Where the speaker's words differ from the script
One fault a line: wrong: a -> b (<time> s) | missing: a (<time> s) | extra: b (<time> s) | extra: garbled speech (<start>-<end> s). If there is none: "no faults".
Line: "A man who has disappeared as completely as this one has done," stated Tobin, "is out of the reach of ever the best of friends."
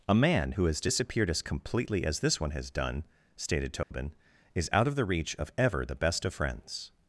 no faults